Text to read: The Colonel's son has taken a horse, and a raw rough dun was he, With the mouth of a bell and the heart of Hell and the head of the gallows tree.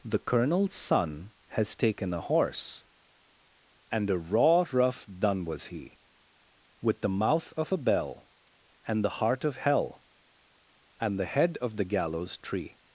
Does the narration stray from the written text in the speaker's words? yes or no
no